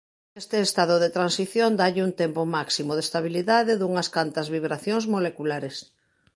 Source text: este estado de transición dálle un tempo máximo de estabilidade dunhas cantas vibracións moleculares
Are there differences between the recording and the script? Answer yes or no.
no